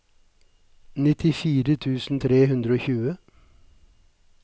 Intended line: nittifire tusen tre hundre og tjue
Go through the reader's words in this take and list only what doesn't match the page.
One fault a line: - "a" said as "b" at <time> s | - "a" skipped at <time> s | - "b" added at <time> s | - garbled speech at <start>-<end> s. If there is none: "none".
none